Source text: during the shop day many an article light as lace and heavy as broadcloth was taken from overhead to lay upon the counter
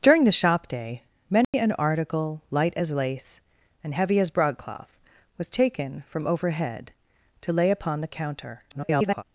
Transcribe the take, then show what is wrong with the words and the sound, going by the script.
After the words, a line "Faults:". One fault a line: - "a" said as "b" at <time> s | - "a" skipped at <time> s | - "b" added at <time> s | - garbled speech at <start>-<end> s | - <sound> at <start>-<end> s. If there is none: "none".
during the shop day many an article light as lace and heavy as broadcloth was taken from overhead to lay upon the counter [garbled]
Faults:
- dropout at 1.4-1.5 s
- garbled speech at 8.7-9.2 s